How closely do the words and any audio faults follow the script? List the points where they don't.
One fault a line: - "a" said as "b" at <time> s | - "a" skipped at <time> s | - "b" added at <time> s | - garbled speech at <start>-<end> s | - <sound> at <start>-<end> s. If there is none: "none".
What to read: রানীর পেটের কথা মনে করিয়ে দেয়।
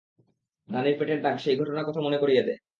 - "দাগ সেই ঘটনার" added at 1.2 s